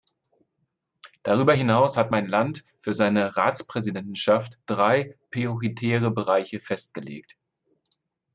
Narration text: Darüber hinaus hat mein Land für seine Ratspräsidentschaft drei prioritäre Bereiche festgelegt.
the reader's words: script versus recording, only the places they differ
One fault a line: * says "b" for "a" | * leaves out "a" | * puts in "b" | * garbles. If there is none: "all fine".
all fine